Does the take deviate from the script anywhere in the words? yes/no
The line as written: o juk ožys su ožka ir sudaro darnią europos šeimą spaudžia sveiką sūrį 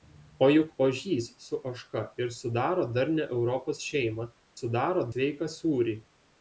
yes